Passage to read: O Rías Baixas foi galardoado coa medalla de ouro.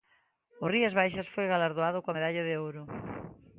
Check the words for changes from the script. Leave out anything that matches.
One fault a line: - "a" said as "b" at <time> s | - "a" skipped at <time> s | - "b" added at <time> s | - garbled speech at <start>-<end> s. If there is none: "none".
none